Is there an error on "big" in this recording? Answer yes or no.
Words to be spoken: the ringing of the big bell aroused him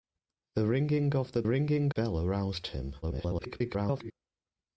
yes